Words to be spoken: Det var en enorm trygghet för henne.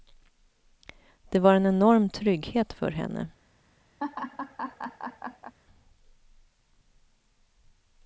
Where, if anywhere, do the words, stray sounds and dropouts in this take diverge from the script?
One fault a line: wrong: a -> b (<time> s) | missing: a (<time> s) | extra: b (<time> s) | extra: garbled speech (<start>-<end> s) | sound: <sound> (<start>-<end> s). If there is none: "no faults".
sound: laugh (4.0-5.5 s)